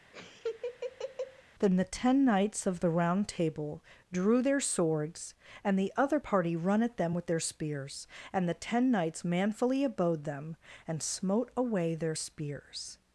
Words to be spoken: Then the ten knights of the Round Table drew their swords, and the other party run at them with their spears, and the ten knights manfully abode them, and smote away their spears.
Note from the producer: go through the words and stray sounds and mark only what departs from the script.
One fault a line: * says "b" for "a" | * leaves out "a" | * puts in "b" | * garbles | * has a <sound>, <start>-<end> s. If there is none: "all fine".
* has a laugh, 0.1-1.4 s